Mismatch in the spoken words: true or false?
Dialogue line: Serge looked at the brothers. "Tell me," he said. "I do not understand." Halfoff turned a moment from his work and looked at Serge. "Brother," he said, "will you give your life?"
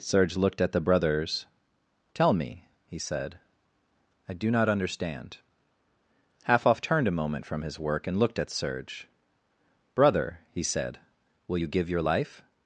false